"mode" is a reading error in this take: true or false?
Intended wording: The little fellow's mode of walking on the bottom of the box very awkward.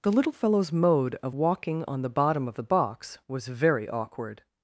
false